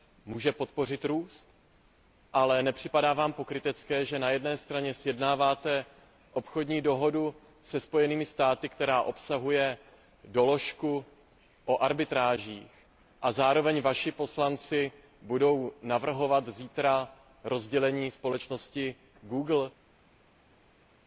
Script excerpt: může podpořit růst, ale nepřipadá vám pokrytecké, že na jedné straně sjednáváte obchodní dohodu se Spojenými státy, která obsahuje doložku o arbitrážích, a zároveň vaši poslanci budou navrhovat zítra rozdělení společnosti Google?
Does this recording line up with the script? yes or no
yes